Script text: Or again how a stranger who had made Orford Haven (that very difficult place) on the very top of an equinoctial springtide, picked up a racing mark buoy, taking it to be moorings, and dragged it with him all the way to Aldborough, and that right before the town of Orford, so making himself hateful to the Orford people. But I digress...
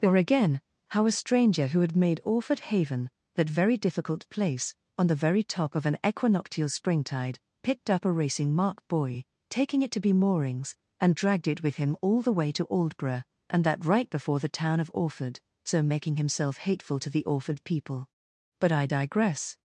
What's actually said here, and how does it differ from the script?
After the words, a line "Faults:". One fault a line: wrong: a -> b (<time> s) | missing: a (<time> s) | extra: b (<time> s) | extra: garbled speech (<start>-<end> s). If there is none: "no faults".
Or again how a stranger who had made Orford Haven (that very difficult place) on the very top of an equinoctial springtide, picked up a racing mark buoy, taking it to be moorings, and dragged it with him all the way to Aldborough, and that right before the town of Orford, so making himself hateful to the Orford people. But I digress...
Faults:
no faults